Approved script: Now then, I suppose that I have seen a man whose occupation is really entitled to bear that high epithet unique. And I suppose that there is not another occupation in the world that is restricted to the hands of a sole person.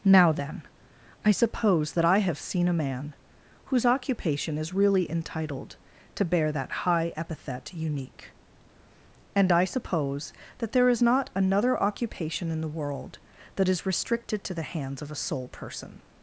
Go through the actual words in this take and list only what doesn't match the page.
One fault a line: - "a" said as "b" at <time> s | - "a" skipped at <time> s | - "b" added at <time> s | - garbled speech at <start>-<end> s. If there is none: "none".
none